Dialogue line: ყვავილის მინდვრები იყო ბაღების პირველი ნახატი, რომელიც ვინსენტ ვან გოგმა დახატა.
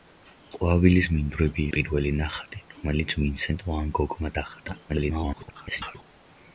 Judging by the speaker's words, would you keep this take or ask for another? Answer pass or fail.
fail